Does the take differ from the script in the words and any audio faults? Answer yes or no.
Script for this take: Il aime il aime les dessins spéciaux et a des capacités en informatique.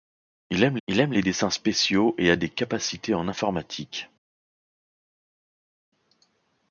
no